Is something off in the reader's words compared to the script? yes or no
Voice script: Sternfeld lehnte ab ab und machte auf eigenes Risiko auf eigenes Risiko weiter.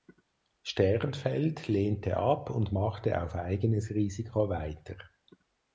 yes